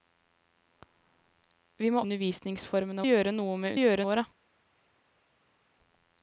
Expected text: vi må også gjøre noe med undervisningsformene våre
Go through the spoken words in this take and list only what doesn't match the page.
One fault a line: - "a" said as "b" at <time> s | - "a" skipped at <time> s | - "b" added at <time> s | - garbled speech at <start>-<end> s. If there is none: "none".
- "også" said as "undervisningsformene" at 2.0 s
- "undervisningsformene" said as "gjøre" at 3.8 s